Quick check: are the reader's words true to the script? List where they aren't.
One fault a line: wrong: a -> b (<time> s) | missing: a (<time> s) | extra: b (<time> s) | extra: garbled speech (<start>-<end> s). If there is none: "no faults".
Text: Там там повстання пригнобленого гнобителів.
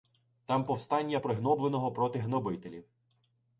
missing: там (0.7 s)
extra: проти (1.9 s)